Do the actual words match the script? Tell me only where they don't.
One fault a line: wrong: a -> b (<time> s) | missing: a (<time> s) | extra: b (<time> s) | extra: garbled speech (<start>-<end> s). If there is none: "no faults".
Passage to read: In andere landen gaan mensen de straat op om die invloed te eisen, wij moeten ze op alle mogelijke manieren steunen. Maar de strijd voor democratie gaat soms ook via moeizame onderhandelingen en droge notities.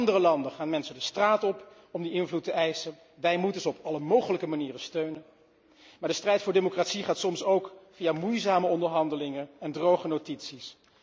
no faults